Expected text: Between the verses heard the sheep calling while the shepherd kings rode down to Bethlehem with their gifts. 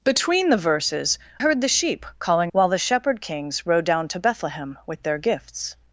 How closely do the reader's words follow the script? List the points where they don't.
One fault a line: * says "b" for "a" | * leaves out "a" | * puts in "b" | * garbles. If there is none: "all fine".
all fine